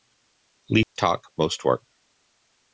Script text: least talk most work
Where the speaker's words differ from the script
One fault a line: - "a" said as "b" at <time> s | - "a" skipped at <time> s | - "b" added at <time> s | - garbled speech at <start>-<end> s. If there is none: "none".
none